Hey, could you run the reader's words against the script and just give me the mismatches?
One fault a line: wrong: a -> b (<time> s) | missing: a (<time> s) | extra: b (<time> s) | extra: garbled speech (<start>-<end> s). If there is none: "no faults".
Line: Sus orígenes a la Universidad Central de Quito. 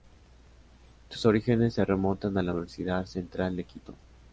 extra: se remontan (1.8 s)